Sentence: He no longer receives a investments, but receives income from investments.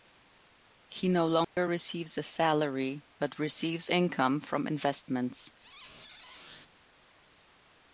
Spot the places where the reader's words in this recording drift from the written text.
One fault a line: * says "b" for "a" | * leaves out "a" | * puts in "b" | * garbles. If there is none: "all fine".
* says "salary" for "investments"